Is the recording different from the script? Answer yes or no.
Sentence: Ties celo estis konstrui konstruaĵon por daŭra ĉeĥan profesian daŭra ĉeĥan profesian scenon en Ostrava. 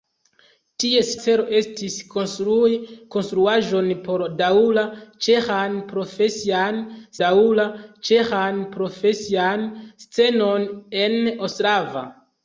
no